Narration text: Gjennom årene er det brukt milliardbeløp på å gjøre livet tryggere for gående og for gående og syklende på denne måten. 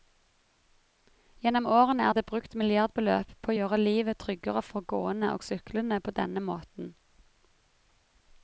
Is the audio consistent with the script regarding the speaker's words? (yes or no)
no